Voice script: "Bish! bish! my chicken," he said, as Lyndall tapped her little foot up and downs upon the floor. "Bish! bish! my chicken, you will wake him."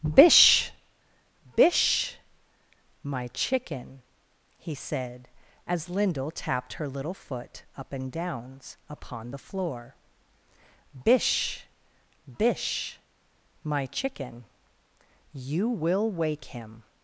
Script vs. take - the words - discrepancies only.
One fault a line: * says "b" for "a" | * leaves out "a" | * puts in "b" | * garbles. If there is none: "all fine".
all fine